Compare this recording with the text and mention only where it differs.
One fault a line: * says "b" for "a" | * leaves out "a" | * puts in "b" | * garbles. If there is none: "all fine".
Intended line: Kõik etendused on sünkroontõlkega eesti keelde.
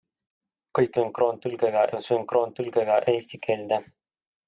* says "sünkroontõlkega" for "etendused"